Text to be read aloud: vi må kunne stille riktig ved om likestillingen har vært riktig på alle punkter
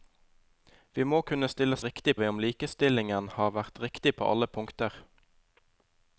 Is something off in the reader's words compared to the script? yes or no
no